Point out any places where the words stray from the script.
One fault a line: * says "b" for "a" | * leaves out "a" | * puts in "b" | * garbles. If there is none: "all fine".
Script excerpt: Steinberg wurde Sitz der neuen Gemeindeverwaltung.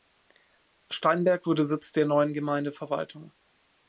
all fine